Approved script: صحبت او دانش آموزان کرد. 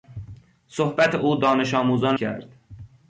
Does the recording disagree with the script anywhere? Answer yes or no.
no